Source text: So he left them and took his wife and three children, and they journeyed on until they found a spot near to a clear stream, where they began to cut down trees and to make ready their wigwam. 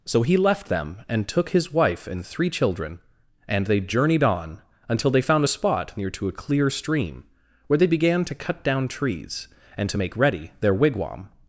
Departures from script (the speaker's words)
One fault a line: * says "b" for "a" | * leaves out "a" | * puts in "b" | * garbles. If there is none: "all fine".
all fine